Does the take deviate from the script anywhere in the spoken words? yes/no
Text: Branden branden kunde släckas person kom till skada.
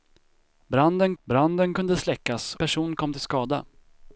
no